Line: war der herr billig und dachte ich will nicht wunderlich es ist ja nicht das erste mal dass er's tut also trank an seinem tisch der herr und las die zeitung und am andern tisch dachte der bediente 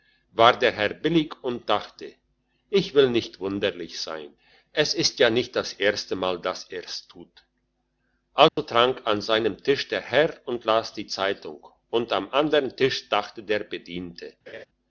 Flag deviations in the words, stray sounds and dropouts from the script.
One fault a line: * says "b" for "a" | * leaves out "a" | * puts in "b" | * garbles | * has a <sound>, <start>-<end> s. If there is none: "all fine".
* puts in "sein"
* has a dropout, 8.5-8.6 s
* has a laugh, 14.5-14.7 s